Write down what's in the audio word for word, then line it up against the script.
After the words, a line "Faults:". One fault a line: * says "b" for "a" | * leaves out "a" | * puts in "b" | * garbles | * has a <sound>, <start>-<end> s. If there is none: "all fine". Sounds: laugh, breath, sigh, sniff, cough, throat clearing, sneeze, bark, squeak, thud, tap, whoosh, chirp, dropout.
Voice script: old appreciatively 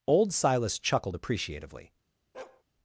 old silas chuckled appreciatively
Faults:
* puts in "silas chuckled"
* has a bark, 2.3-2.6 s